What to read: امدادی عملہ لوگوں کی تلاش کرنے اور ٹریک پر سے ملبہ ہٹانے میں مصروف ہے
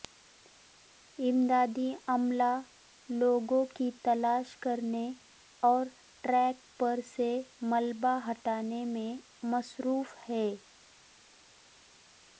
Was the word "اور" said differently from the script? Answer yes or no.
no